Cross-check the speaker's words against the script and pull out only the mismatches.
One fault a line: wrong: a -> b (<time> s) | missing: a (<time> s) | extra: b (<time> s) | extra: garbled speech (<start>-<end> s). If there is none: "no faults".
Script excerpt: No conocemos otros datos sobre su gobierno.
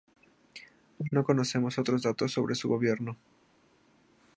no faults